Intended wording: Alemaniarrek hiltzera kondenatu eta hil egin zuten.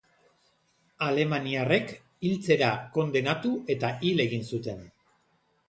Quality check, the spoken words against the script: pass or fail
pass